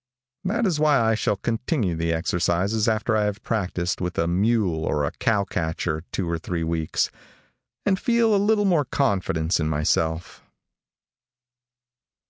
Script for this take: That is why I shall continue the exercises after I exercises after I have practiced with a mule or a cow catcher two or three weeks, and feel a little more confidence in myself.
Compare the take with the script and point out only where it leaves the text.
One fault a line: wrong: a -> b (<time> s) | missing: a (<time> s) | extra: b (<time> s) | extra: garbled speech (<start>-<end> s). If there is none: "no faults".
missing: exercises after I (3.2 s)